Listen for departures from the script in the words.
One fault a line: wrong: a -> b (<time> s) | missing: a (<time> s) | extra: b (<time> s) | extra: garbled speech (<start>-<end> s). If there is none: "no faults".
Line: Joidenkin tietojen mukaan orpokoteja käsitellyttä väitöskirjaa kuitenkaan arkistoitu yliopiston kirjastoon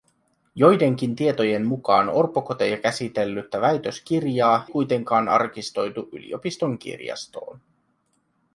no faults